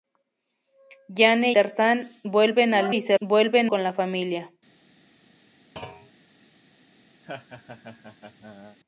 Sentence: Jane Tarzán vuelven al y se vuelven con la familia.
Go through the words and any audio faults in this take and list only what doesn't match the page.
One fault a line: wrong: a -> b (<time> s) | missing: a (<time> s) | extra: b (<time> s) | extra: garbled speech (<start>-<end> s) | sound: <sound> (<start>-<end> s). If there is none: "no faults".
sound: thud (5.8-6.1 s)
sound: laugh (7.2-8.8 s)